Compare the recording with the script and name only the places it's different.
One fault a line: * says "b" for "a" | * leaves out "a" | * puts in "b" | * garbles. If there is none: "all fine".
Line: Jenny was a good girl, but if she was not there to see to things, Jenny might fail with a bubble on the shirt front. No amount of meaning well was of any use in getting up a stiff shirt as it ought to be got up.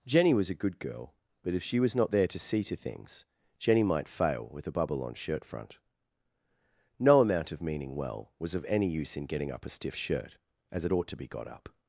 * leaves out "the"